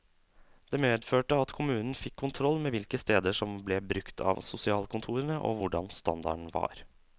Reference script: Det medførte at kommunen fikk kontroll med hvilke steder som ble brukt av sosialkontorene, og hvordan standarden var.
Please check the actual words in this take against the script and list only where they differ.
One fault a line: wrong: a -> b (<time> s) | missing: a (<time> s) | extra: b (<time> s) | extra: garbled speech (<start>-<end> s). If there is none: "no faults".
no faults